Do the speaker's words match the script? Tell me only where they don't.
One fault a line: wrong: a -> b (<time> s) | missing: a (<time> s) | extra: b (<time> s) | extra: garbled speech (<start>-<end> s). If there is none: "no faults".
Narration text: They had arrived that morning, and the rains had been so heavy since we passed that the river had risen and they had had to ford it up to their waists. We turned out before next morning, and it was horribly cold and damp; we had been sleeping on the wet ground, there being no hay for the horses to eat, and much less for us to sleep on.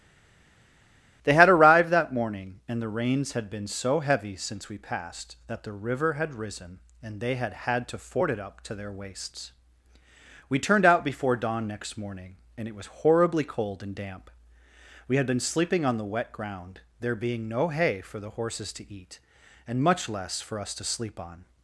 extra: dawn (11.4 s)